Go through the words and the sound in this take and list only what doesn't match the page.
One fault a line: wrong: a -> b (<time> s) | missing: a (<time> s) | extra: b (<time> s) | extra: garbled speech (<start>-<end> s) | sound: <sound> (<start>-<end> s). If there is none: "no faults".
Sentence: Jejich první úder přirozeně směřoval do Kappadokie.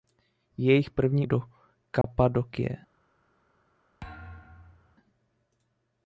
missing: úder přirozeně směřoval (1.3 s)
sound: dropout (2.0-2.0 s)
sound: thud (4.0-5.0 s)